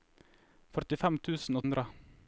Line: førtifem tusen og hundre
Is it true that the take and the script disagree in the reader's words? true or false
false